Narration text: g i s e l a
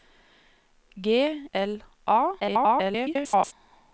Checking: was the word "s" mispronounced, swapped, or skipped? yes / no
yes